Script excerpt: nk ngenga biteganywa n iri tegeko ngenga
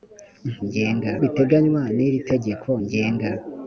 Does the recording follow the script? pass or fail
pass